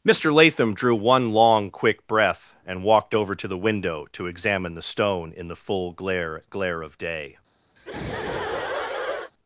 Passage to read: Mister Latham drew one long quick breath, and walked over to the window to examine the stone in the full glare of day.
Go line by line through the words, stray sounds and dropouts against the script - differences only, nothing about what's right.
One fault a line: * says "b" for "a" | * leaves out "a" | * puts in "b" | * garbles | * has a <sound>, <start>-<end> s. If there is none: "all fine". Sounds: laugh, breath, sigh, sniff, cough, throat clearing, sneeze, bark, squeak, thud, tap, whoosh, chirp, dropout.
* puts in "glare"
* has a laugh, 7.8-9.3 s